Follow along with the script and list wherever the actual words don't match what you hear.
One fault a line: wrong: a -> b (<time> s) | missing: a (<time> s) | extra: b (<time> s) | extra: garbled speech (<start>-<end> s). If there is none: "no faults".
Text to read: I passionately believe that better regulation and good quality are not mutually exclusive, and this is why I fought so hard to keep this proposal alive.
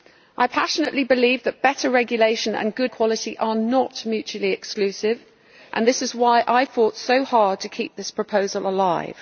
no faults